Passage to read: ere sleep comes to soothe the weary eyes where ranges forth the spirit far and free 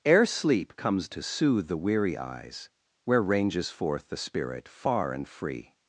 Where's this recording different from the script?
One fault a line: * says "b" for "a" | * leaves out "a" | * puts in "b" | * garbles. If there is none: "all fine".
all fine